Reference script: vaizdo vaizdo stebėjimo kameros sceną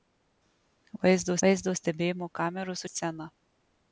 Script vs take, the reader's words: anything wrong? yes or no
no